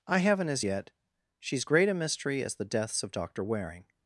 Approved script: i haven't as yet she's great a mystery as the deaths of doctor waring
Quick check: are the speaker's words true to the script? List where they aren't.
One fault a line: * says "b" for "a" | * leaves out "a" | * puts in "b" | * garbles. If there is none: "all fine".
all fine